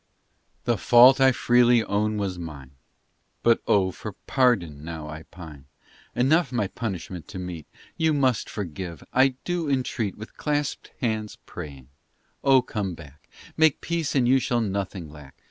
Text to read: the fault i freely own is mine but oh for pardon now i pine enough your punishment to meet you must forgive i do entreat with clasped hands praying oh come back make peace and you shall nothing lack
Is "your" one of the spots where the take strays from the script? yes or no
yes